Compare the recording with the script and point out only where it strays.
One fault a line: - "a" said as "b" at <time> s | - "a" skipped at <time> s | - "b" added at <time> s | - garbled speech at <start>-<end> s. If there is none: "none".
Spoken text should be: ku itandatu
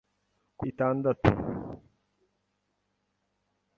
none